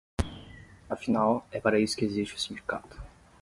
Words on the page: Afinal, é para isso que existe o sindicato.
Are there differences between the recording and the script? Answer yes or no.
no